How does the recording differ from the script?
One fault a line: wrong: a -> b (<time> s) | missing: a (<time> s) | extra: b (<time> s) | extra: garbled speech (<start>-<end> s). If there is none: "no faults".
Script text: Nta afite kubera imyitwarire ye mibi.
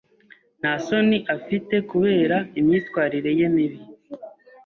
extra: soni (0.8 s)